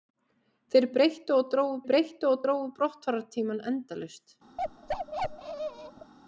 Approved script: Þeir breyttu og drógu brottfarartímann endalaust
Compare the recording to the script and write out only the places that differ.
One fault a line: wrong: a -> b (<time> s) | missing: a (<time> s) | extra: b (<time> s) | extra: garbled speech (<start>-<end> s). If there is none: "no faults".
extra: breyttu og drógu (1.9 s)